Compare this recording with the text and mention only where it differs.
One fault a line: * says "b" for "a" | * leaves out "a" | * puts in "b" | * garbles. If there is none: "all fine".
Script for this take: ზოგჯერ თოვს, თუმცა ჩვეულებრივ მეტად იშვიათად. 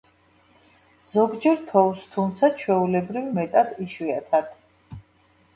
all fine